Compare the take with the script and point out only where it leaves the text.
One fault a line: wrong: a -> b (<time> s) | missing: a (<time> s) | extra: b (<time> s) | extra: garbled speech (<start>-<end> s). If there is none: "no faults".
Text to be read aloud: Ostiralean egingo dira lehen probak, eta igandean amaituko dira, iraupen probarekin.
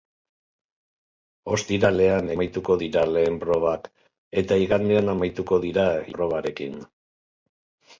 wrong: egingo -> amaituko (2.3 s)
missing: iraupen (5.9 s)